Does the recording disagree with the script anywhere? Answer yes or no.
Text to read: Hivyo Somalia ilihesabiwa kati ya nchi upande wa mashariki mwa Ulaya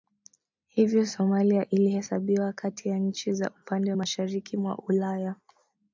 yes